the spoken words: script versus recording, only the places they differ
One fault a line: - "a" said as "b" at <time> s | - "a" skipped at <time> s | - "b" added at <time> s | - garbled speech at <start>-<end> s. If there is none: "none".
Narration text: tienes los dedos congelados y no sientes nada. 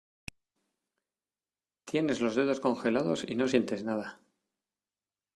none